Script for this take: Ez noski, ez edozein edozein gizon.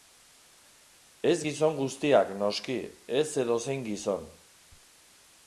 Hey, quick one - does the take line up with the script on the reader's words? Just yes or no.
no